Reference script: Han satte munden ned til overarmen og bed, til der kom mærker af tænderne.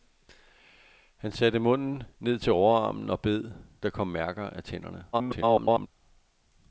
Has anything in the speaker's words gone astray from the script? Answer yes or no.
yes